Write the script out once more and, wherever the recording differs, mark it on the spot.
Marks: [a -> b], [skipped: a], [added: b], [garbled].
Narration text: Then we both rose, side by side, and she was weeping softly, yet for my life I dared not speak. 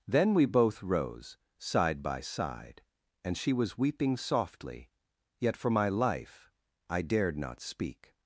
Then we both rose, side by side, and she was weeping softly, yet for my life I dared not speak.